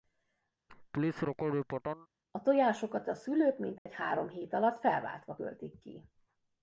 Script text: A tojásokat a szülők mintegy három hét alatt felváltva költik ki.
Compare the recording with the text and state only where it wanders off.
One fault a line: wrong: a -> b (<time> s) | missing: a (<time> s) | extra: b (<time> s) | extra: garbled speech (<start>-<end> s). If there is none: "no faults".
no faults